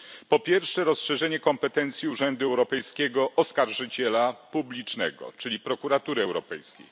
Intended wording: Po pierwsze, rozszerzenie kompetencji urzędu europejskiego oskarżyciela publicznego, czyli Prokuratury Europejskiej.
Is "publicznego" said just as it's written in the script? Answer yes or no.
yes